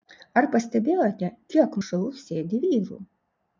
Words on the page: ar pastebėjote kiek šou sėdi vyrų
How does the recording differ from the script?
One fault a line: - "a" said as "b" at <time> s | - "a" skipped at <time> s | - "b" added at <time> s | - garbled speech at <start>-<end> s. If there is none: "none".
none